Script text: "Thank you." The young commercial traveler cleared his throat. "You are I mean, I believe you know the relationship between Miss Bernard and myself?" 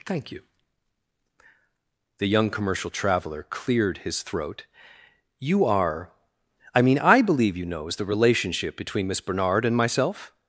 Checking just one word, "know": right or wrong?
wrong